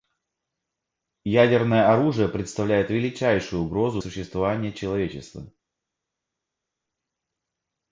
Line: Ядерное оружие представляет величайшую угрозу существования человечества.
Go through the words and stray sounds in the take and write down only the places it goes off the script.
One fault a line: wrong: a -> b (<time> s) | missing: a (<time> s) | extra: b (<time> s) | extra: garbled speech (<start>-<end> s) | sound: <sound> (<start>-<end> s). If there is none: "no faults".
no faults